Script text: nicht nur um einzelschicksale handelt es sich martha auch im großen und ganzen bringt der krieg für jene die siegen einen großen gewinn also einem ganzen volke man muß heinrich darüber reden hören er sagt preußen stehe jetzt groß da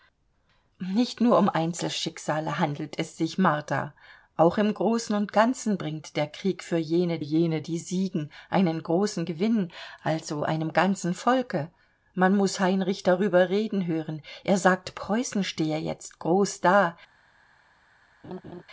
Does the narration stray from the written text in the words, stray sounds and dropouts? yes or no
yes